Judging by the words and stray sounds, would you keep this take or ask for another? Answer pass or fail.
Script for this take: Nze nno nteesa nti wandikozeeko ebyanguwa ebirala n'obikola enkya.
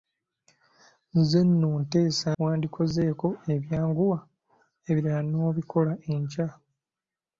fail